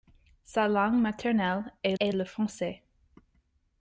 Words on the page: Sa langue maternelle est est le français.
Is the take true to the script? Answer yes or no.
yes